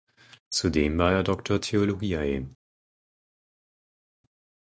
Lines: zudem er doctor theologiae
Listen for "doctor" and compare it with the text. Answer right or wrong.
right